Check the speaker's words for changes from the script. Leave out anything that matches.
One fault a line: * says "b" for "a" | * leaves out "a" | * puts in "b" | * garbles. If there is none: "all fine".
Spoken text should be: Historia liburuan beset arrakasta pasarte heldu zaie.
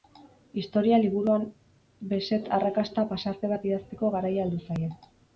* puts in "bat idazteko garaia"